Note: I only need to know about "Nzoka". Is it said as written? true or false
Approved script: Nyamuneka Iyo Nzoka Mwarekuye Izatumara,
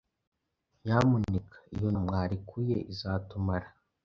false